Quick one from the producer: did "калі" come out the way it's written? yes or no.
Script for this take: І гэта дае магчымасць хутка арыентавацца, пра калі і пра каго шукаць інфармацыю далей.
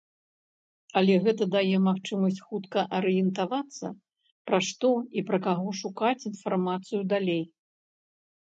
no